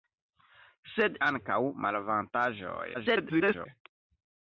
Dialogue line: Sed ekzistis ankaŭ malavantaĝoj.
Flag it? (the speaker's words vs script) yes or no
yes